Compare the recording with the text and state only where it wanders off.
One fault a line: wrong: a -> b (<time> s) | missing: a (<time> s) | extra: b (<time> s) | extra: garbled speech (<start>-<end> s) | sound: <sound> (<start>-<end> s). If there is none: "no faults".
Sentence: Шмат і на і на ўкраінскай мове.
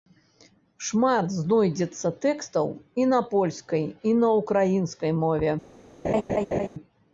extra: знойдзецца тэкстаў (1.3 s)
extra: польскай (3.4 s)
sound: laugh (6.0-6.7 s)